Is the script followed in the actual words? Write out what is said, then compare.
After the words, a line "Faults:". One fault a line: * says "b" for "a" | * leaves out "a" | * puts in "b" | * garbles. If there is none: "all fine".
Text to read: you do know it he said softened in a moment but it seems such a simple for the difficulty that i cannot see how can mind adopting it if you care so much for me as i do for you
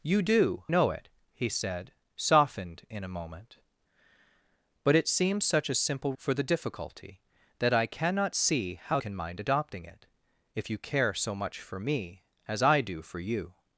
you do know it he said softened in a moment but it seems such a simple for the difficulty that i cannot see how can mind adopting it if you care so much for me as i do for you
Faults:
all fine